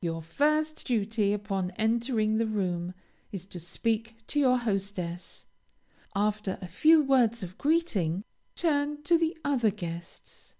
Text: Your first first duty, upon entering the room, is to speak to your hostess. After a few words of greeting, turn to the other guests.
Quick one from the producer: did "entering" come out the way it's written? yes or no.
yes